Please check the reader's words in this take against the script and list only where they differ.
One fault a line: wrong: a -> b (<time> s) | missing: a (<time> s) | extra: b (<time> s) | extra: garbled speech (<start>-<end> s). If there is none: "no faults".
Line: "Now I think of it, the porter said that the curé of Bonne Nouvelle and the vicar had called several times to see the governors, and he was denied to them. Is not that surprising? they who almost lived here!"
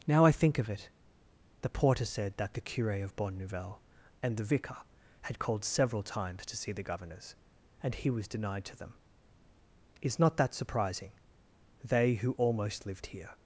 no faults